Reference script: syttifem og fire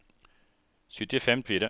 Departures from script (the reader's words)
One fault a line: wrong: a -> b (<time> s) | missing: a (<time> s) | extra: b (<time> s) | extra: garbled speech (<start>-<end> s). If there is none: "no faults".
no faults